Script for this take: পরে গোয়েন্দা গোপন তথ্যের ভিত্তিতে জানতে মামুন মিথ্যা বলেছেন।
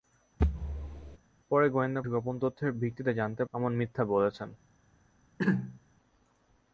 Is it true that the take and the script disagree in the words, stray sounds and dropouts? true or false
true